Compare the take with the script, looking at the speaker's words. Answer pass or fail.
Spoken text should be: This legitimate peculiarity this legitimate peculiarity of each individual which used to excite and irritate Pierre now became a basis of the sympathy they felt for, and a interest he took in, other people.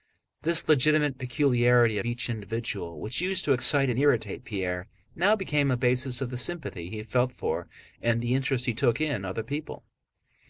fail